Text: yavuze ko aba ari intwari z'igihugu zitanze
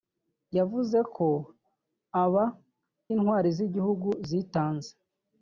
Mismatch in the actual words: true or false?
true